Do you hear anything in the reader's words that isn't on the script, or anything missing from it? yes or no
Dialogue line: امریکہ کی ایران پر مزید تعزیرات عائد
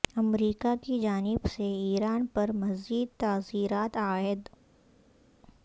yes